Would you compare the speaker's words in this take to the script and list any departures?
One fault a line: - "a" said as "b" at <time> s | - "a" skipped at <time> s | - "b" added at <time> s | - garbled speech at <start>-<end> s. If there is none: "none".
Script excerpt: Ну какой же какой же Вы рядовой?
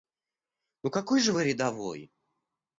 - "какой же" skipped at 1.3 s